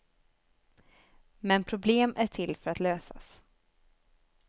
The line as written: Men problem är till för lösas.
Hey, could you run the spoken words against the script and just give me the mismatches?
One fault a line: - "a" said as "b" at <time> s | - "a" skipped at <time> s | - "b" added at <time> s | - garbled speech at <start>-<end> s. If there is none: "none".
- "att" added at 2.7 s